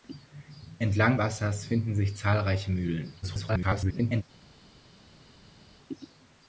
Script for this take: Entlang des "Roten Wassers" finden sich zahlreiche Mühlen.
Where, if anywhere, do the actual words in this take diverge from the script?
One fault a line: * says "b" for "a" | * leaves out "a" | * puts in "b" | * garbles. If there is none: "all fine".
* leaves out "des Roten"
* garbles